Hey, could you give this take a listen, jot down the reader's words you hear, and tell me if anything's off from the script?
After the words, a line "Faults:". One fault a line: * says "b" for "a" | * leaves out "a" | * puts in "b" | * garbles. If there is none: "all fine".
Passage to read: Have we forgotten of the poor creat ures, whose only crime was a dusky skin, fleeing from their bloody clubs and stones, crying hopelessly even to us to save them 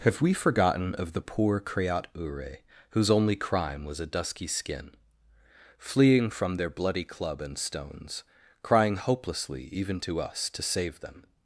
Have we forgotten of the poor creat ure, whose only crime was a dusky skin, fleeing from their bloody club and stones, crying hopelessly even to us to save them
Faults:
* says "ure" for "ures"
* says "club" for "clubs"